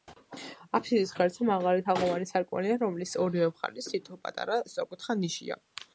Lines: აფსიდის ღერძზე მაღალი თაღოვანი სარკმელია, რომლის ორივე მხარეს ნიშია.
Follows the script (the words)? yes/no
no